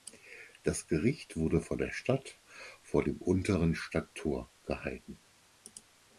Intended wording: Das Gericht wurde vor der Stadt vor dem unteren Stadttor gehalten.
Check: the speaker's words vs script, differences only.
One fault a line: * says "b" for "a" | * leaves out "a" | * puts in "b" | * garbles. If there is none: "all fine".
all fine